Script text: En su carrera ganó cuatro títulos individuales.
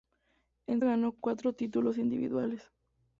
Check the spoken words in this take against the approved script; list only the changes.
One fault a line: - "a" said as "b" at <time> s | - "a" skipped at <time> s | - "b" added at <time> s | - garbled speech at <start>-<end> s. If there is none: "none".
- "su carrera" skipped at 0.8 s